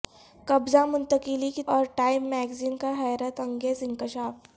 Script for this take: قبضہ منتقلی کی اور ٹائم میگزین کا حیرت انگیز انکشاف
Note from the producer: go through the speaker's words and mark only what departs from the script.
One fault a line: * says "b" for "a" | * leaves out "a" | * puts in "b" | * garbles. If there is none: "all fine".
all fine